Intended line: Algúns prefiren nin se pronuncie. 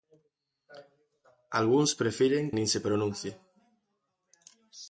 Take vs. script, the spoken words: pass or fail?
pass